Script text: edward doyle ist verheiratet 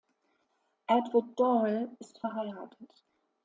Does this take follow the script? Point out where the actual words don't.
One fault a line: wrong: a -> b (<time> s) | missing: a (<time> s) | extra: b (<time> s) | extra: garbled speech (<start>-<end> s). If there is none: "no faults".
no faults